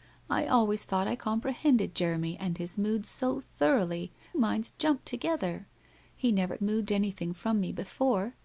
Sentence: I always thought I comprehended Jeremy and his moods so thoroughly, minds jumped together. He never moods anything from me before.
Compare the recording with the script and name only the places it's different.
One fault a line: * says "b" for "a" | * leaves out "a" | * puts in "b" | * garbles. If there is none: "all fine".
all fine